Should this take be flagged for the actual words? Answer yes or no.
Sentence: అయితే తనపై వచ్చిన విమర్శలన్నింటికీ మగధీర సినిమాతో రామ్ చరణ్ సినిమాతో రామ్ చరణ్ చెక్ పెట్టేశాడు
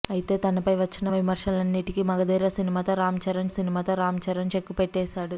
no